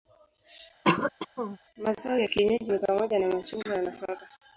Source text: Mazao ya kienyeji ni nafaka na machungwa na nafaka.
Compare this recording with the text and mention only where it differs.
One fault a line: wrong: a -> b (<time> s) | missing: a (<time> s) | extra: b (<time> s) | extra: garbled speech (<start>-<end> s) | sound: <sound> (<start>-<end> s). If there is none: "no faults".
sound: throat clearing (0.8-1.6 s)
wrong: nafaka -> pamoja (2.8 s)